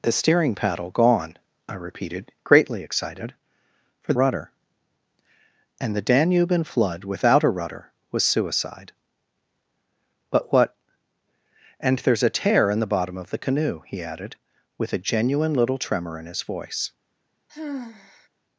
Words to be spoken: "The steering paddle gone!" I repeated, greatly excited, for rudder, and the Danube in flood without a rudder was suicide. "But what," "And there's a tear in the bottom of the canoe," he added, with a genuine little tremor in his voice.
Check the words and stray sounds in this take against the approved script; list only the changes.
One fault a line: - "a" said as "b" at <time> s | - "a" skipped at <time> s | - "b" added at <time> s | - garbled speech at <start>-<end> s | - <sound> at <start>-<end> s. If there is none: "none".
- sigh at 17.5-18.3 s